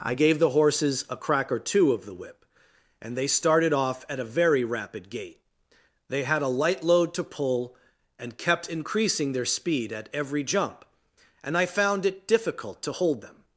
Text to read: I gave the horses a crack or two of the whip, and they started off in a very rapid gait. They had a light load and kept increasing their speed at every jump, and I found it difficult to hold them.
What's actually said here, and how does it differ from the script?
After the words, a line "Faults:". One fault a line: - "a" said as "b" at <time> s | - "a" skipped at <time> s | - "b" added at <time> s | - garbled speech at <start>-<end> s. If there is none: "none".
I gave the horses a crack or two of the whip, and they started off at a very rapid gait. They had a light load to pull, and kept increasing their speed at every jump, and I found it difficult to hold them.
Faults:
- "in" said as "at" at 4.1 s
- "to pull" added at 7.1 s